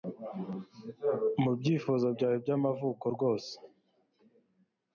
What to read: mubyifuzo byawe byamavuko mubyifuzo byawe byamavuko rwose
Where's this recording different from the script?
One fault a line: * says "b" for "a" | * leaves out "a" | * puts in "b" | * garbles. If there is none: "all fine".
* leaves out "mubyifuzo byawe byamavuko"